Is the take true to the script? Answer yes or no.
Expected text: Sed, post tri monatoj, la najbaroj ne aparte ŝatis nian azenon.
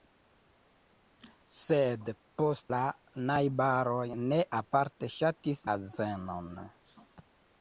no